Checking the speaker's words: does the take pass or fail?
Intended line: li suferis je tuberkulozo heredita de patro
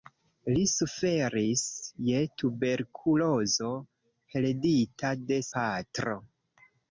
pass